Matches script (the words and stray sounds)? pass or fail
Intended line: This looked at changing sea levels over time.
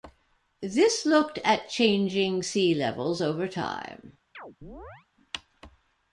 fail